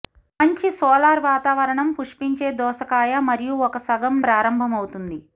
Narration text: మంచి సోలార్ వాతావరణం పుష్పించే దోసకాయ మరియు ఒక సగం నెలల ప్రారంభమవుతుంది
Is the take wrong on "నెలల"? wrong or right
wrong